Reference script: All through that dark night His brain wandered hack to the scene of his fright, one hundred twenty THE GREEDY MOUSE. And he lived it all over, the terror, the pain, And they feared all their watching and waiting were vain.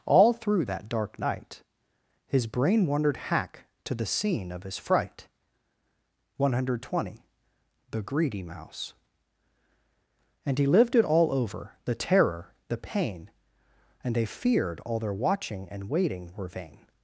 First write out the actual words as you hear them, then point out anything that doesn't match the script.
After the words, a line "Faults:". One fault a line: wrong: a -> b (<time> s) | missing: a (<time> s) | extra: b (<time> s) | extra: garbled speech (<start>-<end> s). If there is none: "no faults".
All through that dark night His brain wandered hack to the scene of his fright, one hundred twenty THE GREEDY MOUSE. And he lived it all over, the terror, the pain, And they feared all their watching and waiting were vain.
Faults:
no faults